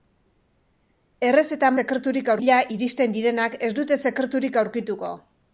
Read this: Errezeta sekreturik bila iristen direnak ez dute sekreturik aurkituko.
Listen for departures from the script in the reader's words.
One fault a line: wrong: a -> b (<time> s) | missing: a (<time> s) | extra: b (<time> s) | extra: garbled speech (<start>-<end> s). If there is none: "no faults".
no faults